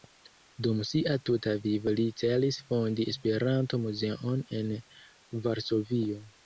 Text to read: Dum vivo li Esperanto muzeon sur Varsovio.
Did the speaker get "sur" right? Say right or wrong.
wrong